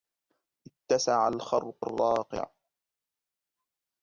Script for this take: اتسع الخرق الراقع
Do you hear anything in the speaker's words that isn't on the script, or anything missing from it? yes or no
no